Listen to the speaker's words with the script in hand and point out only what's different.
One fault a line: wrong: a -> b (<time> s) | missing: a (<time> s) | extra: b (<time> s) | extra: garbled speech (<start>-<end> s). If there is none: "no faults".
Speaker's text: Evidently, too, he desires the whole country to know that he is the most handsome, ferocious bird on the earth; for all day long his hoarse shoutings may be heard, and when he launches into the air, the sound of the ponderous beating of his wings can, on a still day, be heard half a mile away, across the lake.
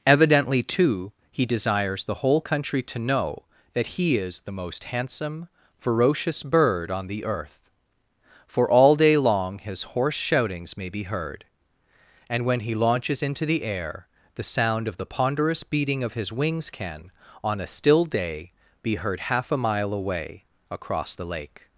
no faults